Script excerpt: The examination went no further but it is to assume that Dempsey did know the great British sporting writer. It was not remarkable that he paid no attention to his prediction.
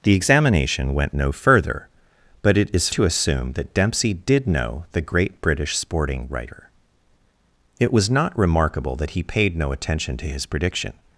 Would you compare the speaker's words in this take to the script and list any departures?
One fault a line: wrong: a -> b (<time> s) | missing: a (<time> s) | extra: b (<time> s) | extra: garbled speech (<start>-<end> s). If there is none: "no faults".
no faults